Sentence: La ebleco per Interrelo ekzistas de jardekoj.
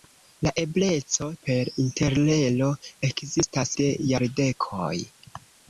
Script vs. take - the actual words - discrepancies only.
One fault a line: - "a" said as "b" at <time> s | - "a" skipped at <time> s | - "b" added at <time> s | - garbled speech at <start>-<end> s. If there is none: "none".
none